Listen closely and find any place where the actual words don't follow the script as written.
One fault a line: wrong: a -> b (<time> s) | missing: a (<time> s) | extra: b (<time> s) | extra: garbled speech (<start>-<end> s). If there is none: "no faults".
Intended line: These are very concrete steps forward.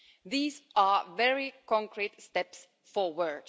no faults